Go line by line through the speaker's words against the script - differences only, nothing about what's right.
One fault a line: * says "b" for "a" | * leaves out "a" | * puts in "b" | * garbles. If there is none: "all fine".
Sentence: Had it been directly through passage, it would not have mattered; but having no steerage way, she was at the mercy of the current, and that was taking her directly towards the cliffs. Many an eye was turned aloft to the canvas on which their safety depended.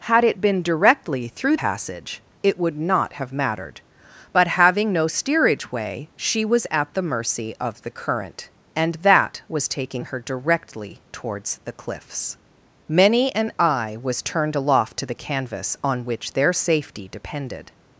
all fine